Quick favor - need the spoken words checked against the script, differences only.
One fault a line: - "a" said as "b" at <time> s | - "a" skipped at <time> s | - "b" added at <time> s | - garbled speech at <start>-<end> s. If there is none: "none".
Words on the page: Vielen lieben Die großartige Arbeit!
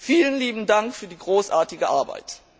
- "Dank für" added at 0.7 s